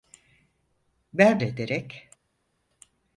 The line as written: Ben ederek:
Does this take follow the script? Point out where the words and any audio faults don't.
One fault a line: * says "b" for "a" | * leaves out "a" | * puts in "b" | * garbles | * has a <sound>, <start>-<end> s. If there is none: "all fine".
all fine